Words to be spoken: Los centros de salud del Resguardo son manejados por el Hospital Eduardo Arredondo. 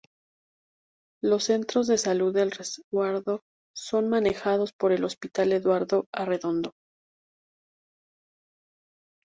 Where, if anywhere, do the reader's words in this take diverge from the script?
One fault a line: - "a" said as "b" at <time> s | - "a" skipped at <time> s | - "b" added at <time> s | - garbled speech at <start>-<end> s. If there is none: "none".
none